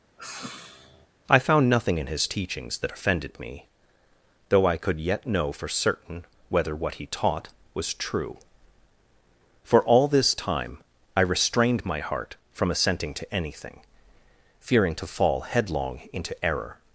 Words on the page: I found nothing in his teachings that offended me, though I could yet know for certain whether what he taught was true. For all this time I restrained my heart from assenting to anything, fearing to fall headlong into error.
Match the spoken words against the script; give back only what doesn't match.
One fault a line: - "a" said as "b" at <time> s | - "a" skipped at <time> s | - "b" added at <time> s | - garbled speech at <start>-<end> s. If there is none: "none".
none